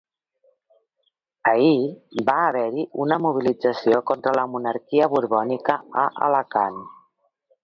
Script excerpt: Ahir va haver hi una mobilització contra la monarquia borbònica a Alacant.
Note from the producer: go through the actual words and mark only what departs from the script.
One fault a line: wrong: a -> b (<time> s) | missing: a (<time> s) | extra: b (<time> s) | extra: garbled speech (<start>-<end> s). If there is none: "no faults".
no faults